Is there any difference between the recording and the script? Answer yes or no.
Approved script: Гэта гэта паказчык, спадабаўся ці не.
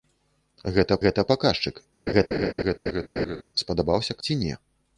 no